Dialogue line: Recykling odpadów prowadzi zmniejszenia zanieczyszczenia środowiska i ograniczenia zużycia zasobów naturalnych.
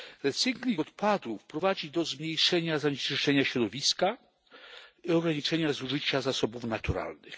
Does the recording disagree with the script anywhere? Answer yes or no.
yes